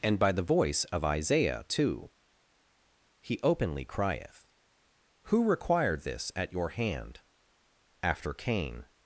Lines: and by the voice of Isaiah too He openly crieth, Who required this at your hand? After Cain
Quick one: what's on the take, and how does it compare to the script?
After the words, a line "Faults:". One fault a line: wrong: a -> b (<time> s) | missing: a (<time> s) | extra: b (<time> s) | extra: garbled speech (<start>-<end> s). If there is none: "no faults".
and by the voice of Isaiah too He openly crieth, Who required this at your hand? After Cain
Faults:
no faults